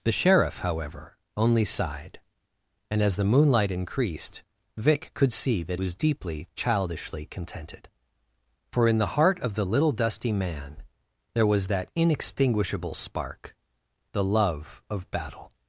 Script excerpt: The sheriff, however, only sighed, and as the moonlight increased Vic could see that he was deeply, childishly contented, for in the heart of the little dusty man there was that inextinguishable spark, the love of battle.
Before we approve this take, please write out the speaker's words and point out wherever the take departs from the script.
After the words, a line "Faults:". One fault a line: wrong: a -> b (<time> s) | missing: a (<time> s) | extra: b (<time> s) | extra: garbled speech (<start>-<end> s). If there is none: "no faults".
The sheriff, however, only sighed, and as the moonlight increased Vic could see that was deeply, childishly contented, for in the heart of the little dusty man there was that inextinguishable spark, the love of battle.
Faults:
missing: he (5.8 s)